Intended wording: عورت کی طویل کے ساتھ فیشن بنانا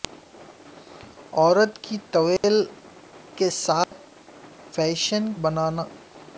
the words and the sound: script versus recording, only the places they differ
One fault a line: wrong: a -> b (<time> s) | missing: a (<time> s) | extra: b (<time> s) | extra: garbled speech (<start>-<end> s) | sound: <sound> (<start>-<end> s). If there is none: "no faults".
sound: dropout (2.4-2.4 s)
sound: dropout (3.8-3.9 s)